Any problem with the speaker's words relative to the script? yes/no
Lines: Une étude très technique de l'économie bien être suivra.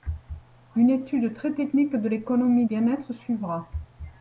no